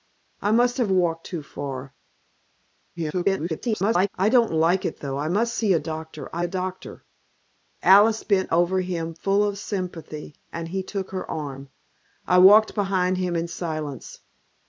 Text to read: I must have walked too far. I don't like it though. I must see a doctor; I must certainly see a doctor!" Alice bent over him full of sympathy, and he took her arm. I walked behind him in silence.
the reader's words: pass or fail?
fail